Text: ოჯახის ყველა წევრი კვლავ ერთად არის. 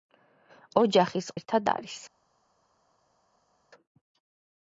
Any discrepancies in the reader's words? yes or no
yes